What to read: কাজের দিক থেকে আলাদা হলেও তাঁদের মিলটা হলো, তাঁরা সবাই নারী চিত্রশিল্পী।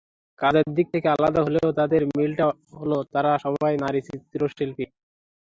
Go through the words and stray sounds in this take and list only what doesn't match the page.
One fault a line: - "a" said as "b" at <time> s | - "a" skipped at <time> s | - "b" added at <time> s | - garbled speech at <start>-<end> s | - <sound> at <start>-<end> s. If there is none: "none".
none